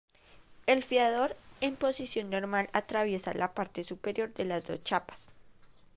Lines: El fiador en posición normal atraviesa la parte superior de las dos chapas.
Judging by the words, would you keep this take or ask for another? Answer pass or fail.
pass